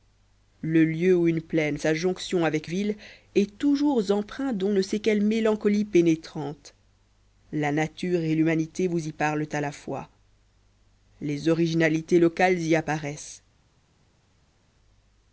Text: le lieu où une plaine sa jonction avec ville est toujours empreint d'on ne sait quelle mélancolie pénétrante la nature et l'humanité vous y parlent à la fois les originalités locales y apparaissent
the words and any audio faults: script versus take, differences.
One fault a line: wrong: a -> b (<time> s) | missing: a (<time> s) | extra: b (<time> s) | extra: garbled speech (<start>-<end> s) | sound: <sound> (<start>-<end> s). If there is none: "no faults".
no faults